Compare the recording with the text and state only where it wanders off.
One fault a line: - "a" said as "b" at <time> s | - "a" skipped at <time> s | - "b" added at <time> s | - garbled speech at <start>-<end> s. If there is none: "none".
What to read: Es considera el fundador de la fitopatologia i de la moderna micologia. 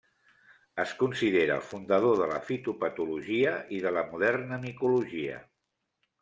none